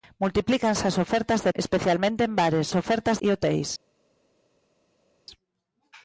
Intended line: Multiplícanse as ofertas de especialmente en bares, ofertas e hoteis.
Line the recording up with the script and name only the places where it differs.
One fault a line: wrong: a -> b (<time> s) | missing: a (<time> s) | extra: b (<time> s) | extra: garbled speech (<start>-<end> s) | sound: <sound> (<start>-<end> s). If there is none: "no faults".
no faults